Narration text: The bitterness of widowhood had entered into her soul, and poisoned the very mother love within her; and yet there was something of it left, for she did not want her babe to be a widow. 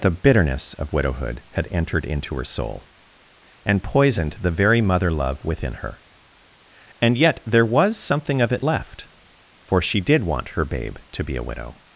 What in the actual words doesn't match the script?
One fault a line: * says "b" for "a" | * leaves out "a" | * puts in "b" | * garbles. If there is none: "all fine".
* leaves out "not"